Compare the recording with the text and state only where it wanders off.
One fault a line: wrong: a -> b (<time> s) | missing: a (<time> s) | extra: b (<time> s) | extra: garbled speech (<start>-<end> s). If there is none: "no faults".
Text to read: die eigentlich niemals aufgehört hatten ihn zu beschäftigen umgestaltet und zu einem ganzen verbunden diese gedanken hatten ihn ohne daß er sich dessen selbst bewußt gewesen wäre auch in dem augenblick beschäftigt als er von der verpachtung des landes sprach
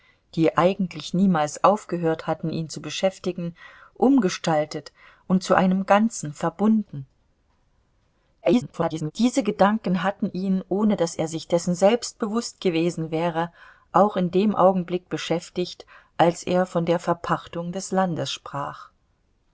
extra: garbled speech (8.4-9.1 s)